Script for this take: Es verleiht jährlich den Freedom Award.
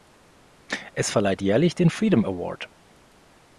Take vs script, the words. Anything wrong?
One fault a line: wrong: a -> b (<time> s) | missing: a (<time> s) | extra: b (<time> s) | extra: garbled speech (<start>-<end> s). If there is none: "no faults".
no faults